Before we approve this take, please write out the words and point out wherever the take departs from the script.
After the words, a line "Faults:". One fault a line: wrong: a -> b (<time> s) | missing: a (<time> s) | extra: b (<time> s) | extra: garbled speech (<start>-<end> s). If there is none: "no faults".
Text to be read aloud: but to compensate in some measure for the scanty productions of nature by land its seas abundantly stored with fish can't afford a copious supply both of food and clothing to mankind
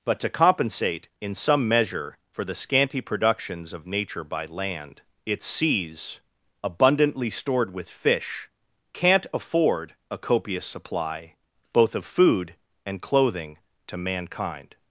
but to compensate in some measure for the scanty productions of nature by land its seas abundantly stored with fish can't afford a copious supply both of food and clothing to mankind
Faults:
no faults